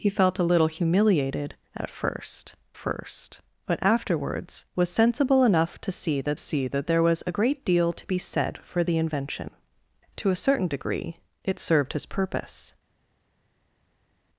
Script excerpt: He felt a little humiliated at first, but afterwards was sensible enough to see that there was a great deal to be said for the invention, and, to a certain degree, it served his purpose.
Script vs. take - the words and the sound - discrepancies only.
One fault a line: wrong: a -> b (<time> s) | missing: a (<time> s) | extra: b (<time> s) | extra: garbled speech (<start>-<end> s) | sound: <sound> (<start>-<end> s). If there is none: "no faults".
extra: first (2.7 s)
extra: see that (6.4 s)
missing: and (9.5 s)